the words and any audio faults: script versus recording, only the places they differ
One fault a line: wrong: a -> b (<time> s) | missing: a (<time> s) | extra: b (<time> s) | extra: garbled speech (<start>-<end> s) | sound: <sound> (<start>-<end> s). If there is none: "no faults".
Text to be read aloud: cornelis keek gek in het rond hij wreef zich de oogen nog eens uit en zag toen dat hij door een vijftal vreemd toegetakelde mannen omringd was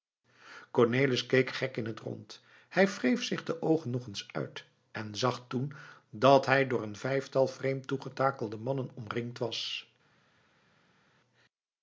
no faults